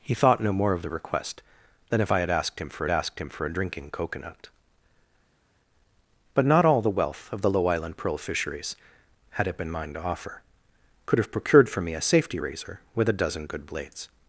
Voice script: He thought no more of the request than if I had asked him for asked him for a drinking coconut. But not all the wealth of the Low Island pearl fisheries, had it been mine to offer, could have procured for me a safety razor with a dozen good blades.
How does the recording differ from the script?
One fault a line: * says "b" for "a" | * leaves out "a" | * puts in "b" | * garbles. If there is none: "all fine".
all fine